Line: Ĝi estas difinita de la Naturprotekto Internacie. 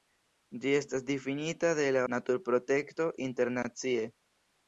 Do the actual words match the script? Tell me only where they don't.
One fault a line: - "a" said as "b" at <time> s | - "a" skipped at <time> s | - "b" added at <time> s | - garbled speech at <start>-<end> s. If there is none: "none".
none